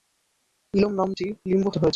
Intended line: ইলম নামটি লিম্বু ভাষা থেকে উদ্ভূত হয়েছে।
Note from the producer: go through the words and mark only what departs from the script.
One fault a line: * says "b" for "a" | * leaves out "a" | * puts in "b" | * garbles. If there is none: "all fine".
* leaves out "ভাষা থেকে উদ্ভূত"